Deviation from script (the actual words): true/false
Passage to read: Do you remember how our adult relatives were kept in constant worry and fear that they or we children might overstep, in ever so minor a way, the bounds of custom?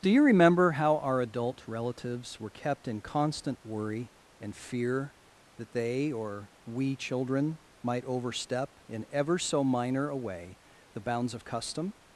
false